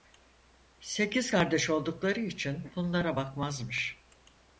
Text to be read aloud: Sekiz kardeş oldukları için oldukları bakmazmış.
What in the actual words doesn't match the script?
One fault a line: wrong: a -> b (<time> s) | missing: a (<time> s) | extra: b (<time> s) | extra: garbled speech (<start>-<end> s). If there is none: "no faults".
wrong: oldukları -> bunlara (2.7 s)